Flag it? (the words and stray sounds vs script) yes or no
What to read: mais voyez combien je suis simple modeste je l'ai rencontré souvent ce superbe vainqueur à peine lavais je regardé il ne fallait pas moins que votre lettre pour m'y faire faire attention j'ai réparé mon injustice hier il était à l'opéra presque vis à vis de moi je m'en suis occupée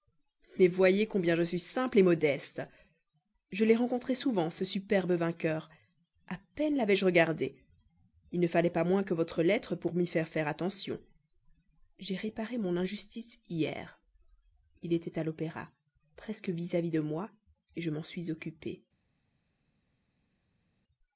no